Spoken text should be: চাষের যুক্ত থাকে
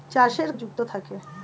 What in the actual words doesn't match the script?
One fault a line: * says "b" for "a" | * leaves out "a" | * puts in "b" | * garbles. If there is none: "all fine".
all fine